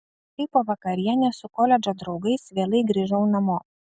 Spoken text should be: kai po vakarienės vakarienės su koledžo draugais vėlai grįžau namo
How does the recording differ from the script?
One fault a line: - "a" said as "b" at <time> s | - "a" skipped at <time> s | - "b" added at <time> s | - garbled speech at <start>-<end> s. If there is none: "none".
- "vakarienės" skipped at 1.4 s